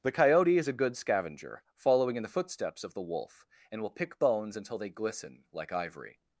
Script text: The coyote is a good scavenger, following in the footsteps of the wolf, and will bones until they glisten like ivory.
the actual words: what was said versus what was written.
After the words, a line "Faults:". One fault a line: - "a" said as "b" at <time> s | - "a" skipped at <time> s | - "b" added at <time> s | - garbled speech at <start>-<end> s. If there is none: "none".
The coyote is a good scavenger, following in the footsteps of the wolf, and will pick bones until they glisten like ivory.
Faults:
- "pick" added at 3.9 s